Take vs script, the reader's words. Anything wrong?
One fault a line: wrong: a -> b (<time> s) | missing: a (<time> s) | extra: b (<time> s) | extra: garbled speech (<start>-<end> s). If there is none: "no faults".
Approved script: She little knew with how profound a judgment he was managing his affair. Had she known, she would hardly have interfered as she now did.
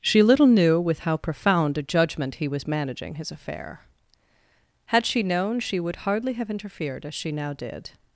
no faults